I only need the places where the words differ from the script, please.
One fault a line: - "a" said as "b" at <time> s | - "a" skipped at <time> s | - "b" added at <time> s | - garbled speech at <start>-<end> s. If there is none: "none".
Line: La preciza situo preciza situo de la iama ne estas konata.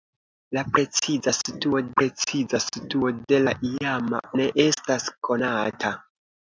none